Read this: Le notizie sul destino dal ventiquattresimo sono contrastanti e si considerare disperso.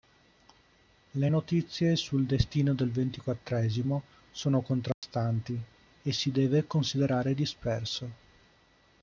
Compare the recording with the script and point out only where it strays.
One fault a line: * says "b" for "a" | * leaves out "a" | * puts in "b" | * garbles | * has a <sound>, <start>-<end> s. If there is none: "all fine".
* says "del" for "dal"
* has a dropout, 4.9-5.0 s
* puts in "deve"